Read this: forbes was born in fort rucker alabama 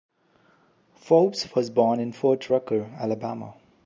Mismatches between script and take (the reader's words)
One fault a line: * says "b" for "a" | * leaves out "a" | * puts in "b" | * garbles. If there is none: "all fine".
all fine